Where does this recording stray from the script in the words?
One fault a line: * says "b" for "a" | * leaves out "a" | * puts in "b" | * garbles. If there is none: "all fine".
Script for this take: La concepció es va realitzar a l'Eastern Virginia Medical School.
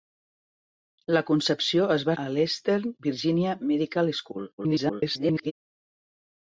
* leaves out "realitzar"
* garbles